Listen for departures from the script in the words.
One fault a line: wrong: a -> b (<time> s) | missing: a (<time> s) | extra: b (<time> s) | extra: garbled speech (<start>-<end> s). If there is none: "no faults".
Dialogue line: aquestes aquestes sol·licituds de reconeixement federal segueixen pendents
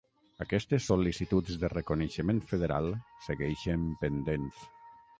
missing: aquestes (0.9 s)